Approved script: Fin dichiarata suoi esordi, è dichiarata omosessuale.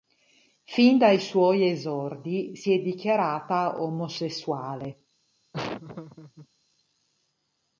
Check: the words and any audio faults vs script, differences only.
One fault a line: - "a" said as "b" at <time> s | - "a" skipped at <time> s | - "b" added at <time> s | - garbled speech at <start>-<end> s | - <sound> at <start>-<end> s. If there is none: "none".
- "dichiarata" said as "dai" at 1.0 s
- "si" added at 2.5 s
- laugh at 5.5-6.5 s